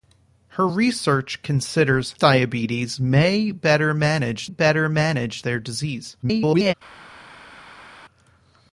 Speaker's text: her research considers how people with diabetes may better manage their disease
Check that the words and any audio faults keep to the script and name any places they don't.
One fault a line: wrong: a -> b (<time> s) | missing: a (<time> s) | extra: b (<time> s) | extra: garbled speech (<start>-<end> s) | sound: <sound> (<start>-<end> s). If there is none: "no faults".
wrong: how people with diabetes may -> diabetes may better manage (2.2 s)
extra: garbled speech (6.2-6.7 s)